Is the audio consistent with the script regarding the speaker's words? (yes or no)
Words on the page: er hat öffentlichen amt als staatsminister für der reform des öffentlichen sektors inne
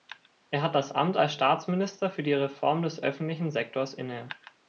no